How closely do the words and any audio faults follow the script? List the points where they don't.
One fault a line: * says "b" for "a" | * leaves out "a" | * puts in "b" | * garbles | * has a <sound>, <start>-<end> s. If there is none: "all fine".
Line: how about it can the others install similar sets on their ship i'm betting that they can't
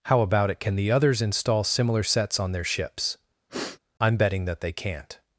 * says "ships" for "ship"
* has a sniff, 3.5-3.8 s